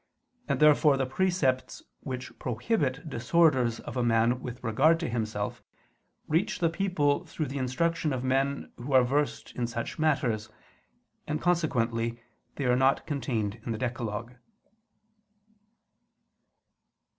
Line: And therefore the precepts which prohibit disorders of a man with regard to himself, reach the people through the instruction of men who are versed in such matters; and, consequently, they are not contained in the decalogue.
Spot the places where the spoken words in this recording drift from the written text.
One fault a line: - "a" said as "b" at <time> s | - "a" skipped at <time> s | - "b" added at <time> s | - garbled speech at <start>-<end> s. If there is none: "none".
none